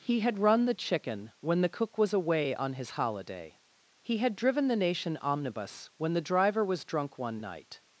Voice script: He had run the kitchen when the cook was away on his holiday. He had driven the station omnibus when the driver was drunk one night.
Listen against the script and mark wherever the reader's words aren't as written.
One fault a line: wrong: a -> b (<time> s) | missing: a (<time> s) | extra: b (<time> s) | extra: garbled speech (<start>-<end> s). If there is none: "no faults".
wrong: kitchen -> chicken (0.7 s)
wrong: station -> nation (4.8 s)